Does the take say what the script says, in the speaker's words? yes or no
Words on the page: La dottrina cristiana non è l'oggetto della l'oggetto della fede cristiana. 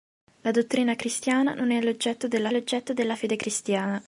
yes